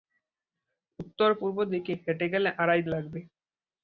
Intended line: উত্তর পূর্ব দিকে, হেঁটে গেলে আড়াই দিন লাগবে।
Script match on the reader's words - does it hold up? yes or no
no